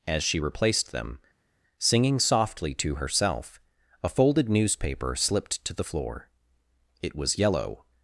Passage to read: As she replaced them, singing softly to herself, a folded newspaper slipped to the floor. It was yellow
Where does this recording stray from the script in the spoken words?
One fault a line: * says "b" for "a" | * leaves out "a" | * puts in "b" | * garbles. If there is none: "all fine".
all fine